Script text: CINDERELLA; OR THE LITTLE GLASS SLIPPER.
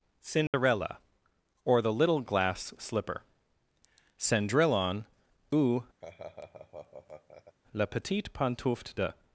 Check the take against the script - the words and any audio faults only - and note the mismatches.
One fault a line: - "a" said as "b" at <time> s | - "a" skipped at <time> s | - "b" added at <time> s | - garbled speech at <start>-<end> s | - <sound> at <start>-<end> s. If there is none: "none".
- dropout at 0.5-0.5 s
- "Cendrillon ou la Petite Pantoufle de" added at 4.2 s
- laugh at 6.0-7.6 s